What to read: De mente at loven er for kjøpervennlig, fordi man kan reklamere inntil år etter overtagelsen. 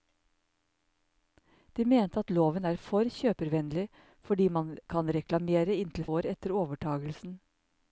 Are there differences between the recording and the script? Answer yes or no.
no